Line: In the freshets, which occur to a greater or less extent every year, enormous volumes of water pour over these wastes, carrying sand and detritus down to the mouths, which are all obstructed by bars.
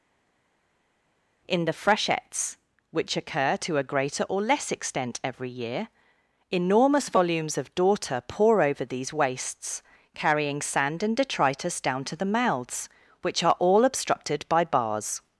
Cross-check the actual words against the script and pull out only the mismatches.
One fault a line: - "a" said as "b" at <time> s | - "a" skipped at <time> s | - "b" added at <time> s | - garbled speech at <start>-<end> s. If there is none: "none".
- "water" said as "daughter" at 7.7 s